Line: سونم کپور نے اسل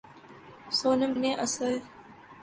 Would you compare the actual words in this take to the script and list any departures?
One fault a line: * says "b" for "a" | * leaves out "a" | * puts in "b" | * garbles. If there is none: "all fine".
* leaves out "کپور"